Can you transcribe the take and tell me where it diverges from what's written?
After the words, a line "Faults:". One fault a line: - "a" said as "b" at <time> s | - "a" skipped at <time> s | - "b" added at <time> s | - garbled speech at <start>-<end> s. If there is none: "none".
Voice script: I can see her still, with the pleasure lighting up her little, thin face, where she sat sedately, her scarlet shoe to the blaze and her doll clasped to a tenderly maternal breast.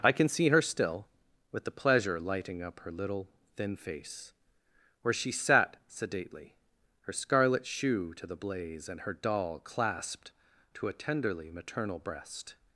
I can see her still, with the pleasure lighting up her little, thin face, where she sat sedately, her scarlet shoe to the blaze and her doll clasped to a tenderly maternal breast.
Faults:
none